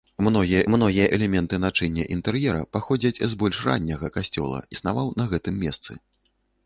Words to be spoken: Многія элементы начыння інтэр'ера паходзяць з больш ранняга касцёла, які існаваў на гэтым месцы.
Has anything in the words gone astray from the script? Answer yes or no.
yes